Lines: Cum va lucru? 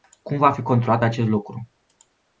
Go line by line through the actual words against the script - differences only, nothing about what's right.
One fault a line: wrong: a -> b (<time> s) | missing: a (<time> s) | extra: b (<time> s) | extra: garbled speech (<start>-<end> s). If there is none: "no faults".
extra: fi controlat acest (0.5 s)